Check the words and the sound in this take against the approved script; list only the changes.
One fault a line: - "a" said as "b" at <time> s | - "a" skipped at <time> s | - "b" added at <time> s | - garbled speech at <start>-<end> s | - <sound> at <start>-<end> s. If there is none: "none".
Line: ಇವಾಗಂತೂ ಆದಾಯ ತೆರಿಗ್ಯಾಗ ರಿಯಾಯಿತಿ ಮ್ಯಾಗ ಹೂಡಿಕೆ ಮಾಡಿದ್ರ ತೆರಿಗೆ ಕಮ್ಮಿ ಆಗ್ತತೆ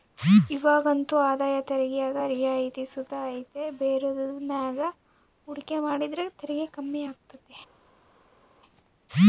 - "ಸುತ ಐತೆ ಬೇರೆದುರ್" added at 2.9 s